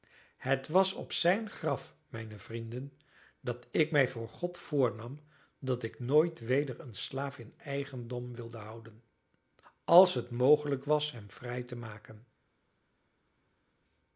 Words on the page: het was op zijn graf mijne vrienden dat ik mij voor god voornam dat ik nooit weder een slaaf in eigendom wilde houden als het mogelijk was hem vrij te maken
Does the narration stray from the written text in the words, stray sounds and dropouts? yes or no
no